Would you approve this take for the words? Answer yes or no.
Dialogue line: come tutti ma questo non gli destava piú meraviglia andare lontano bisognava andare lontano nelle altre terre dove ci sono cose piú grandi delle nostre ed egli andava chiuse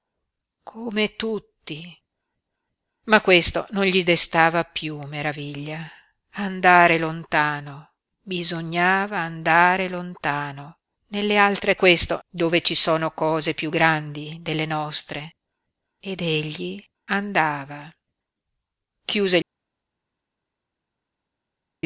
no